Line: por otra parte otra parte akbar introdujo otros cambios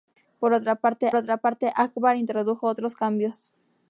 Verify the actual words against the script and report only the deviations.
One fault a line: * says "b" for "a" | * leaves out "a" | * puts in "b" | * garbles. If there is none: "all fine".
all fine